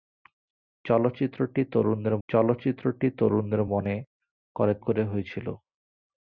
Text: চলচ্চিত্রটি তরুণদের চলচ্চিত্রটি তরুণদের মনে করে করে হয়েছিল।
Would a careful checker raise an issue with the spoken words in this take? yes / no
no